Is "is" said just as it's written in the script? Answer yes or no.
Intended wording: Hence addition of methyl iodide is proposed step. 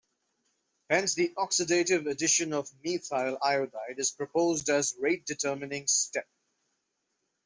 yes